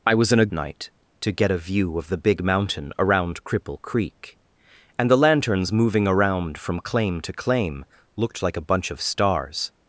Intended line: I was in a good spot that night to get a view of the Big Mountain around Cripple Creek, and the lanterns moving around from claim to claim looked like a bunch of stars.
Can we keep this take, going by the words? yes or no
no